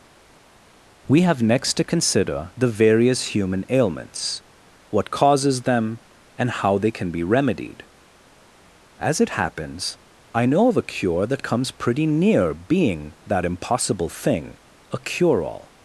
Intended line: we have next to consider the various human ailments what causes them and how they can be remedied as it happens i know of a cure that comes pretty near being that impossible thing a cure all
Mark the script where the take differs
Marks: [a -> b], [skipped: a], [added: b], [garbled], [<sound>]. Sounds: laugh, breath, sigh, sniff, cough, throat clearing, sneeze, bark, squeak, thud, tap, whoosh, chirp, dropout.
we have next to consider the various human ailments what causes them and how they can be remedied as it happens i know of a cure that comes pretty near being that impossible thing a cure all